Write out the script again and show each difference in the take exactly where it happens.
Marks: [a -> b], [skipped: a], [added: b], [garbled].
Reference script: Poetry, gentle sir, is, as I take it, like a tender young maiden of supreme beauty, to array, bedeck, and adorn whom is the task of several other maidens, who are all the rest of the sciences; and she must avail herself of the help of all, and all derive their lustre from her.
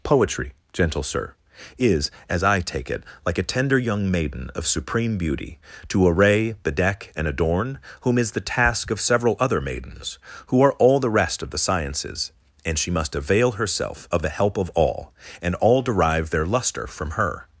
Poetry, gentle sir, is, as I take it, like a tender young maiden of supreme beauty, to array, bedeck, and adorn whom is the task of several other maidens, who are all the rest of the sciences; and she must avail herself of the help of all, and all derive their lustre from her.